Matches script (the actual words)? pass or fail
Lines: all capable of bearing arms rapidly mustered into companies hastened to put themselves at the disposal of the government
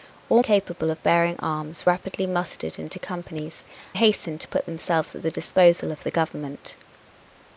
pass